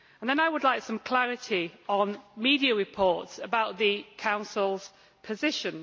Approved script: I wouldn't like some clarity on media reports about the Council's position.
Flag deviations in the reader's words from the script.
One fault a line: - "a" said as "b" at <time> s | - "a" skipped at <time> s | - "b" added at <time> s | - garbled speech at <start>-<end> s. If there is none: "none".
- "wouldn't" said as "would" at 0.5 s